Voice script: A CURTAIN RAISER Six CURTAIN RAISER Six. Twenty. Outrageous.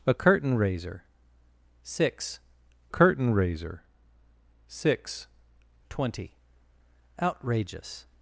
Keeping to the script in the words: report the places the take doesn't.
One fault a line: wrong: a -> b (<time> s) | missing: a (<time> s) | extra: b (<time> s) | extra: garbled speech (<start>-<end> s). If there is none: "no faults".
no faults